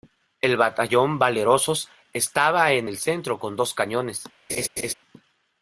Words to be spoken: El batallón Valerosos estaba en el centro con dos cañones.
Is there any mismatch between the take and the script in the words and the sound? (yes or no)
yes